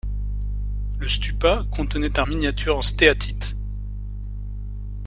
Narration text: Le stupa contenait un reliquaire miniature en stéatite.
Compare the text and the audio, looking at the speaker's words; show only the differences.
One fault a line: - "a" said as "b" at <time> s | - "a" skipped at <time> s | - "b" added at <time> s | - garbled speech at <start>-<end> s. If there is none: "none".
- "reliquaire" skipped at 2.2 s